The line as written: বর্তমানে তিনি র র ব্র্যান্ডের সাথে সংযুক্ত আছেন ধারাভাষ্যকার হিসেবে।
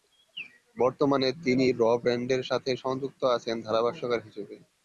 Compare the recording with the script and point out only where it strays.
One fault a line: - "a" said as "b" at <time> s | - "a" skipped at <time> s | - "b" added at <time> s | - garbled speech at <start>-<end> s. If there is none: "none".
- "র" skipped at 2.0 s